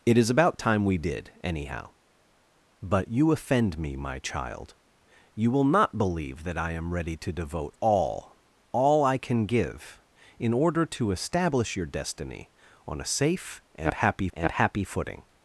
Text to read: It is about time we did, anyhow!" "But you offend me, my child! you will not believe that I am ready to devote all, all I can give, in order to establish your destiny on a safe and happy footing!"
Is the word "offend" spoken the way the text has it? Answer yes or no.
yes